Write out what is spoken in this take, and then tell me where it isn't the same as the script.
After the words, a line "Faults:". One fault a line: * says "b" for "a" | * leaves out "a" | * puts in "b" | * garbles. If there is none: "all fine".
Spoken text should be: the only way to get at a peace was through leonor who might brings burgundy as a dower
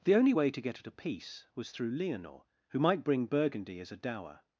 the only way to get at a peace was through leonor who might bring burgundy as a dower
Faults:
* says "bring" for "brings"